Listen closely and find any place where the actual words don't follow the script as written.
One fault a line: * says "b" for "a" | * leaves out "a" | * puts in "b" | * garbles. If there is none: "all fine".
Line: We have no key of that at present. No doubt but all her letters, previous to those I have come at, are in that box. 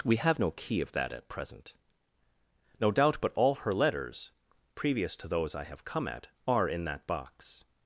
all fine